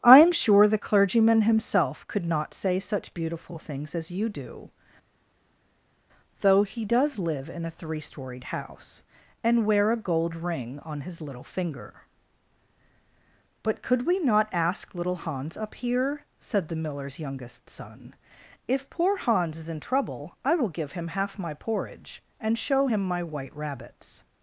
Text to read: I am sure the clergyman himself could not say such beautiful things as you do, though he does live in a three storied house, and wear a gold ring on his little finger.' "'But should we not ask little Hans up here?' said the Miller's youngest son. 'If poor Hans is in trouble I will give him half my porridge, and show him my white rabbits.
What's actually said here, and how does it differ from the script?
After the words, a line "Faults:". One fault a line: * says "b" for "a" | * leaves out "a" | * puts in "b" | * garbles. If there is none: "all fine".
I am sure the clergyman himself could not say such beautiful things as you do, though he does live in a three storied house, and wear a gold ring on his little finger.' "'But could we not ask little Hans up here?' said the Miller's youngest son. 'If poor Hans is in trouble I will give him half my porridge, and show him my white rabbits.
Faults:
* says "could" for "should"